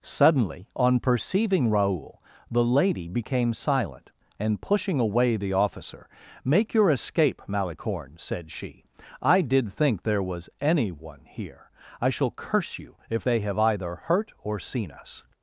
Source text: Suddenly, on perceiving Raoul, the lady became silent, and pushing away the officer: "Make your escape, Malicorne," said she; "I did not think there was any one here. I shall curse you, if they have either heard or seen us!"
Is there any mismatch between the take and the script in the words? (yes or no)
yes